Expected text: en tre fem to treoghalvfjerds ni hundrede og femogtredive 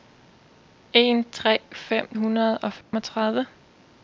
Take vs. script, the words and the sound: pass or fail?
fail